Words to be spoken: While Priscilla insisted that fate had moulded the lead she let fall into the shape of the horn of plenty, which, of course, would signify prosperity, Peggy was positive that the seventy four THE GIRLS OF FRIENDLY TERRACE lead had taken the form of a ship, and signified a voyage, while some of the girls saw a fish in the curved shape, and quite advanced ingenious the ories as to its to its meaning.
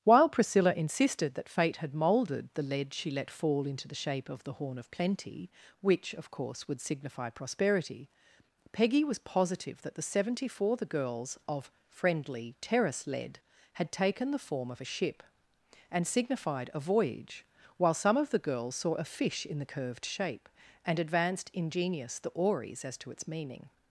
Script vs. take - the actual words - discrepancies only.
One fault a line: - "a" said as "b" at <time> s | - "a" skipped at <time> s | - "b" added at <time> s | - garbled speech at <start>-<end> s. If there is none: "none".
- "quite" skipped at 21.0 s
- "to its" skipped at 23.3 s